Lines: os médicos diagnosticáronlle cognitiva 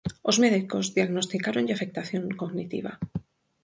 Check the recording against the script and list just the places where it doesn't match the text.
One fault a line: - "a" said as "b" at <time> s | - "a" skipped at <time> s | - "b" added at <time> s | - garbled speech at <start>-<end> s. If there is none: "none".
- "afectación" added at 1.7 s